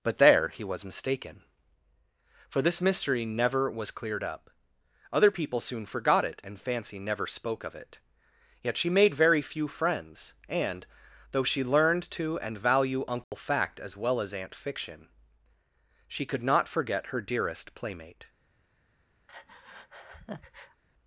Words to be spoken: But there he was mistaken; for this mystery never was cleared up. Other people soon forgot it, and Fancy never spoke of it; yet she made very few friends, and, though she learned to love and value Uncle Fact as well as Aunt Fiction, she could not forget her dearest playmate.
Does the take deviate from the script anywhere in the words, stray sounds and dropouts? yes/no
yes